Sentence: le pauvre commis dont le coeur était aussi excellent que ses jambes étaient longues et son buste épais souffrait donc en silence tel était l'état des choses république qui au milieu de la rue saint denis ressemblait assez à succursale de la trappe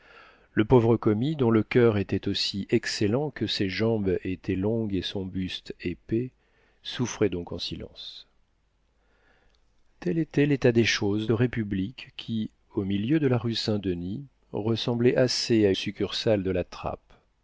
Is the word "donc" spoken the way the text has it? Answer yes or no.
yes